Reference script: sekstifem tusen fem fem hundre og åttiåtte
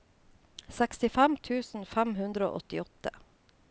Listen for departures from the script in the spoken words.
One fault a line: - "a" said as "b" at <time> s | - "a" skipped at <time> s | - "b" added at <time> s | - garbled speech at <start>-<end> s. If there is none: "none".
- "fem" skipped at 2.1 s